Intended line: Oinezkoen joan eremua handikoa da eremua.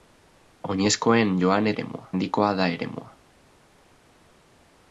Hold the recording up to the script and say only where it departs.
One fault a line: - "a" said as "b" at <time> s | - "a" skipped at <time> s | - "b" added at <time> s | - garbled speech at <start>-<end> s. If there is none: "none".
none